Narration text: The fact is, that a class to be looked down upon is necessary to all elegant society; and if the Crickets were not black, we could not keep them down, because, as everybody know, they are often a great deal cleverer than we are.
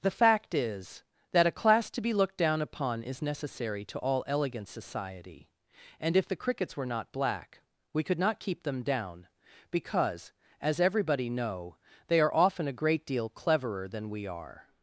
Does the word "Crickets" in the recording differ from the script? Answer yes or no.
no